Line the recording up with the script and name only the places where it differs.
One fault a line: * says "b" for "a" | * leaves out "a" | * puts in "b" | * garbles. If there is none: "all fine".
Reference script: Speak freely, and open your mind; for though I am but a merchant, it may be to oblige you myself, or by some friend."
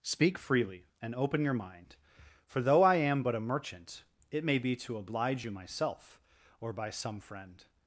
all fine